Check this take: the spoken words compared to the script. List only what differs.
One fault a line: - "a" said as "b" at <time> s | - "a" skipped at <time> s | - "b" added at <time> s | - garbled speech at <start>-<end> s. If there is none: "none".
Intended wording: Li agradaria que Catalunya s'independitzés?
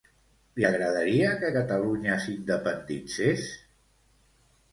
none